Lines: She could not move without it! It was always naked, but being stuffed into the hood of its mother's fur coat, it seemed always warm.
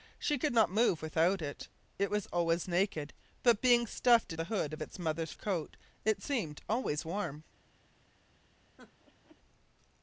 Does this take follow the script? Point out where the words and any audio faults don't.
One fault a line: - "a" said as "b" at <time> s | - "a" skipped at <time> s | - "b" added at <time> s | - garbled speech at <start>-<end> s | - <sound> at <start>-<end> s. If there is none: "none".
- "into" skipped at 4.3 s
- "fur" skipped at 5.3 s
- laugh at 8.8-9.4 s